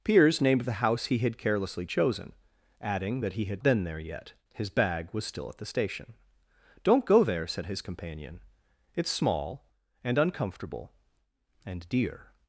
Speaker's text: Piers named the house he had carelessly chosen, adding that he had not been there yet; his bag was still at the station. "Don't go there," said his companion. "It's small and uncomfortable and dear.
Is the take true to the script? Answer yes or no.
no